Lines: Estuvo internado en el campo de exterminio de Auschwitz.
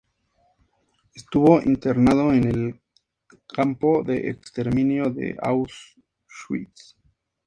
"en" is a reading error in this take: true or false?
false